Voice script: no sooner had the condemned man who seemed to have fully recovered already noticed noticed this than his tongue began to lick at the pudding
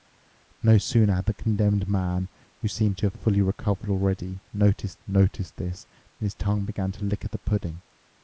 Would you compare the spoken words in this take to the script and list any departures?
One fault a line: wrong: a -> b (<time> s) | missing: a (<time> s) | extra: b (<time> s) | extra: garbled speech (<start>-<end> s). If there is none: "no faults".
no faults